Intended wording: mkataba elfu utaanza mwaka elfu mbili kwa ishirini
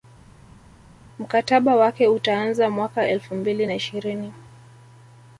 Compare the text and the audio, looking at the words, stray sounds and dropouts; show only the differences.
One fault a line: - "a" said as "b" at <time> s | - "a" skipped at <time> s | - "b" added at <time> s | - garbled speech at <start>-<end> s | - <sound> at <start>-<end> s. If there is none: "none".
- "elfu" said as "wake" at 1.8 s
- "kwa" said as "na" at 3.6 s